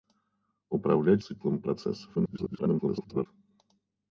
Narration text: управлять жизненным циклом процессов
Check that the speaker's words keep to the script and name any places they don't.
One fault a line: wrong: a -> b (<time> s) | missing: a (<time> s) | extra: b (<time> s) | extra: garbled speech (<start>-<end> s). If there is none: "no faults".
missing: жизненным (1.2 s)
extra: garbled speech (2.1-3.3 s)